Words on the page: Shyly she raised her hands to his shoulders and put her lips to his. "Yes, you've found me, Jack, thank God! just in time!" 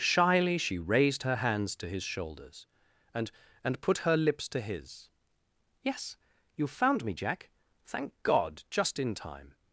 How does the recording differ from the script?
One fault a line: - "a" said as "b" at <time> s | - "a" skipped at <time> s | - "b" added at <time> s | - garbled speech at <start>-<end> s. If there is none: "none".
- "and" added at 3.6 s